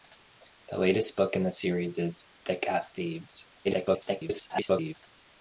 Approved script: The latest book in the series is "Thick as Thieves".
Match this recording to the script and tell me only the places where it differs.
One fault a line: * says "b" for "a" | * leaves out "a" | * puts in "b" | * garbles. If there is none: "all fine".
* garbles